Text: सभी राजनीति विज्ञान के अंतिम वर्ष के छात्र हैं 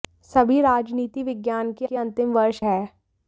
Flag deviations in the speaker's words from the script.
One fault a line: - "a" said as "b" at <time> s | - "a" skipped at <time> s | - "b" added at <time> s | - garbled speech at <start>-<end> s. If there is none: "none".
- "के" added at 1.8 s
- "के छात्र" skipped at 2.6 s